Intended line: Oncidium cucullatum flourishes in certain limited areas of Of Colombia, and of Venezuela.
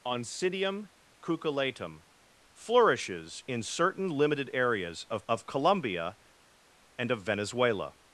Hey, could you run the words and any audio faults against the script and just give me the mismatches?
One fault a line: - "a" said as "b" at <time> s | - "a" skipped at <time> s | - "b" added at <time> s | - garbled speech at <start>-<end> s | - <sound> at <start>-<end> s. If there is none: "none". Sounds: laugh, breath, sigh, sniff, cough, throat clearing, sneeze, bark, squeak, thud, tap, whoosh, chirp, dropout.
none